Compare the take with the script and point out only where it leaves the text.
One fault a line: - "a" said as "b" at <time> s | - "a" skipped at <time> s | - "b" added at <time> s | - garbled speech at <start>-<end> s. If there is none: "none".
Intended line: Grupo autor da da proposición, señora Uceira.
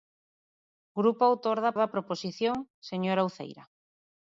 none